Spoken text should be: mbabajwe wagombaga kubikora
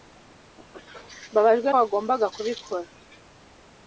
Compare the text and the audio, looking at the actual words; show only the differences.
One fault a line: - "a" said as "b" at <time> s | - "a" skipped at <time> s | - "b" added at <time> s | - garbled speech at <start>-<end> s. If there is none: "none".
none